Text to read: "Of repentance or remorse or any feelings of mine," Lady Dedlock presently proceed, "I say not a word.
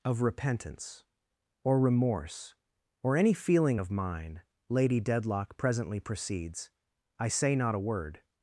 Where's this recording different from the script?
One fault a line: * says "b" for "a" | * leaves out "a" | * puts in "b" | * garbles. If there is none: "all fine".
* says "feeling" for "feelings"
* says "proceeds" for "proceed"